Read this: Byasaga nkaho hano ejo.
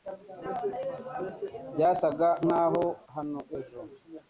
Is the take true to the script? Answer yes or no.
yes